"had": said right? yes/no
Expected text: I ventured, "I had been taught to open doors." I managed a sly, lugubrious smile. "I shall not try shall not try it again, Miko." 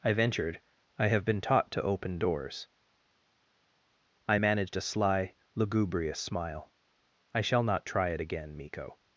no